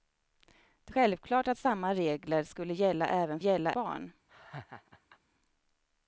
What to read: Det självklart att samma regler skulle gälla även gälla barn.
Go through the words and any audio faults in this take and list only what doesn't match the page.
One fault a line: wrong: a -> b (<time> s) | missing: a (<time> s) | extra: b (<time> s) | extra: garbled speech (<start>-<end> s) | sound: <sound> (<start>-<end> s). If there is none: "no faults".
sound: laugh (4.3-5.2 s)